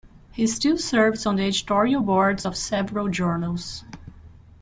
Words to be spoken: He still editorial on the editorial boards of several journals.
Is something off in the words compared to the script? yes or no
yes